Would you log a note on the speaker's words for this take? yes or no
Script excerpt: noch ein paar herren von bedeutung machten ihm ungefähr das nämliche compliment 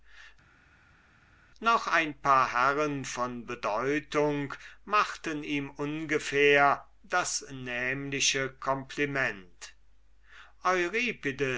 no